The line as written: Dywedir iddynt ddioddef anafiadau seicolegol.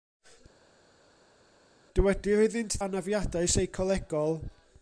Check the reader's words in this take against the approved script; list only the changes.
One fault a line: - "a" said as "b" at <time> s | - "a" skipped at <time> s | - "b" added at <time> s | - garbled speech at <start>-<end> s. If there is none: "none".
- "ddioddef" skipped at 2.8 s